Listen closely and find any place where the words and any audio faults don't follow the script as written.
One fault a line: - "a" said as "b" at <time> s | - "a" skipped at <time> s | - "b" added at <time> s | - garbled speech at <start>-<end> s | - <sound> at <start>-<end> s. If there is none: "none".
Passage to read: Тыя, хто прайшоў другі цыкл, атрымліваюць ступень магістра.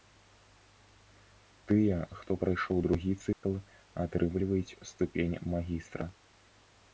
- dropout at 3.3-3.4 s